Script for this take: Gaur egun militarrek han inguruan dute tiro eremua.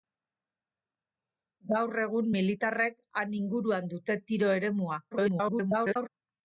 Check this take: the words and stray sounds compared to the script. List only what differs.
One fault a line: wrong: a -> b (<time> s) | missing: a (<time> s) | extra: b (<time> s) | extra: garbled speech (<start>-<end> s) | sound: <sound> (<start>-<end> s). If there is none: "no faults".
extra: garbled speech (5.1-6.1 s)